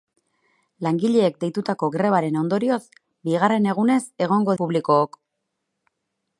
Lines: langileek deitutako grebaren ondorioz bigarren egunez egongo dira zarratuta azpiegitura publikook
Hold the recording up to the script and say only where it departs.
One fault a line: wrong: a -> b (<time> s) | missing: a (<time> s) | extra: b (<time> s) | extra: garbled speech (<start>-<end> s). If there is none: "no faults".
missing: dira zarratuta azpiegitura (4.6 s)